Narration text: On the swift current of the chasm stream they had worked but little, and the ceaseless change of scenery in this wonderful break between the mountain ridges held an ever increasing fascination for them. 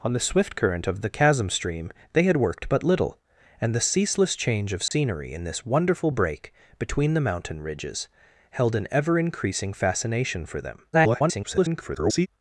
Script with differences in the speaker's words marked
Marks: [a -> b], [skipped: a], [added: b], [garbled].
On the swift current of the chasm stream they had worked but little, and the ceaseless change of scenery in this wonderful break between the mountain ridges held an ever increasing fascination for them. [garbled]